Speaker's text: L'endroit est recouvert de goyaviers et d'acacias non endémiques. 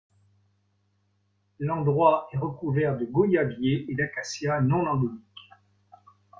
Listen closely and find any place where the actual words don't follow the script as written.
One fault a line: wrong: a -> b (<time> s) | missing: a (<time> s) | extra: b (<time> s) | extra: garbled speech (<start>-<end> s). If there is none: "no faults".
no faults